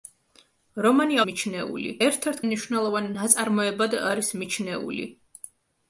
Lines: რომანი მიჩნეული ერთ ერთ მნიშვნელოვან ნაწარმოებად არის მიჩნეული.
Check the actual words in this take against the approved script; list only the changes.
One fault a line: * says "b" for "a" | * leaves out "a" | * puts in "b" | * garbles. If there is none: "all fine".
all fine